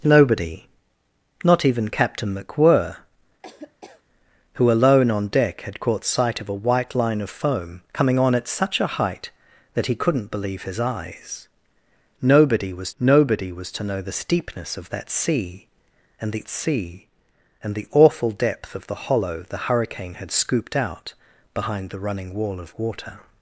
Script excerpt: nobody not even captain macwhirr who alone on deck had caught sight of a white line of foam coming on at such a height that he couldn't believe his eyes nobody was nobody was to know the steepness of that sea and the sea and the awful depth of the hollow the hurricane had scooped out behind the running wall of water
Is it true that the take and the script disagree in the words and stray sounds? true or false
true